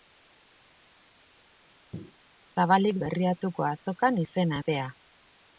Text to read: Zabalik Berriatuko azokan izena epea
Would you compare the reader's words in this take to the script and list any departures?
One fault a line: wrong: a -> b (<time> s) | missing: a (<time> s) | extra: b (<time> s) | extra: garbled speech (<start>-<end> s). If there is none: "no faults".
no faults